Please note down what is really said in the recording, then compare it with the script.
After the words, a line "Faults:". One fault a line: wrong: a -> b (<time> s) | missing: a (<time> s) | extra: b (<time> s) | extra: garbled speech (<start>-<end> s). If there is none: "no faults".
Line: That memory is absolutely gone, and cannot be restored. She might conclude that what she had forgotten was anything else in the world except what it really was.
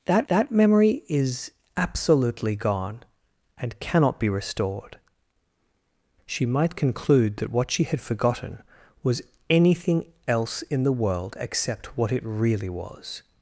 That that memory is absolutely gone, and cannot be restored. She might conclude that what she had forgotten was anything else in the world except what it really was.
Faults:
extra: that (0.3 s)